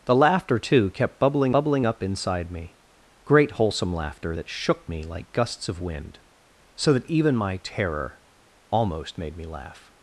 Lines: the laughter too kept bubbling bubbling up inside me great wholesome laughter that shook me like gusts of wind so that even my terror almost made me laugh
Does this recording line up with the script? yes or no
yes